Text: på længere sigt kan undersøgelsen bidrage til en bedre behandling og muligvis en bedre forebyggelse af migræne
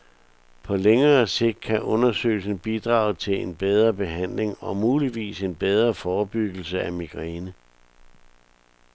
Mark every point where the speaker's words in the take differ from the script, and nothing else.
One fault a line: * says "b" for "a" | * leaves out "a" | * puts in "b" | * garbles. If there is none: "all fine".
all fine